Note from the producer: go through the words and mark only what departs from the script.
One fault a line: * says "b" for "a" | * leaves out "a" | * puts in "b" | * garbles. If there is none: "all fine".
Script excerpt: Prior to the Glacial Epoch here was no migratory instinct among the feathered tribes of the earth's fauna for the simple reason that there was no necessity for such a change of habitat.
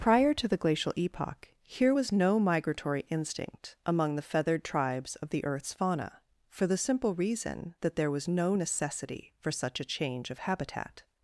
all fine